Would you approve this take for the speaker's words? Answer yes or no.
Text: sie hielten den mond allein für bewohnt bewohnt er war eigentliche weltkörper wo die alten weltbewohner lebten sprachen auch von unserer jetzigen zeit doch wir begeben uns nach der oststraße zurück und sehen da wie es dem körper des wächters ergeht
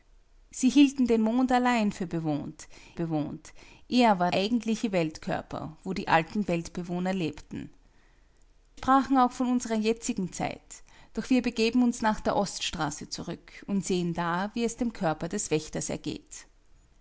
yes